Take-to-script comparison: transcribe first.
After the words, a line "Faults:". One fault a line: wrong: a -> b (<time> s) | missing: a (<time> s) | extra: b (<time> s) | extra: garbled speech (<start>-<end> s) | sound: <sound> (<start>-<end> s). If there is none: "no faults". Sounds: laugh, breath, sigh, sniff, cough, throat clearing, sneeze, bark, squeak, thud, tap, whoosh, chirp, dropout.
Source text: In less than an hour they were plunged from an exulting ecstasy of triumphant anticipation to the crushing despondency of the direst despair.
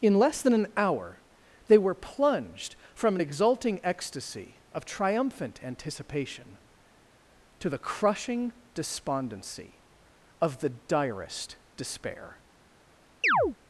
In less than an hour they were plunged from an exulting ecstasy of triumphant anticipation to the crushing despondency of the direst despair.
Faults:
sound: chirp (13.2-13.6 s)